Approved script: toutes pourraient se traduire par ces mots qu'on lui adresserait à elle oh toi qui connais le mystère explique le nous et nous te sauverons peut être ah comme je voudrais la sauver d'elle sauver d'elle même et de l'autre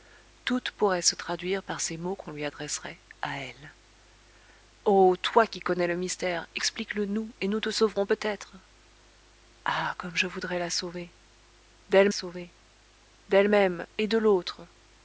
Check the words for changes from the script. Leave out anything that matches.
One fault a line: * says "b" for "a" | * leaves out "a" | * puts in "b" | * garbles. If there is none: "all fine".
all fine